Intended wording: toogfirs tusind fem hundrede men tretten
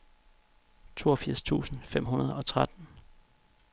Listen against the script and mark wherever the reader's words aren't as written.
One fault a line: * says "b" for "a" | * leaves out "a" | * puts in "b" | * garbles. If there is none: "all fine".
* says "og" for "men"